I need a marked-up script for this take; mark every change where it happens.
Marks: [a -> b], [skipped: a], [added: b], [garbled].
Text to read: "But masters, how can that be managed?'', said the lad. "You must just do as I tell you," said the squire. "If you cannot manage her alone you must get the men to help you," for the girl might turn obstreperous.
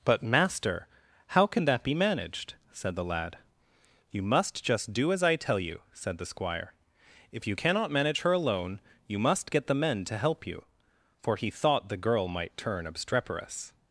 "But [masters, -> master] how can that be managed?'', said the lad. "You must just do as I tell you," said the squire. "If you cannot manage her alone you must get the men to help you," for [added: he thought] the girl might turn obstreperous.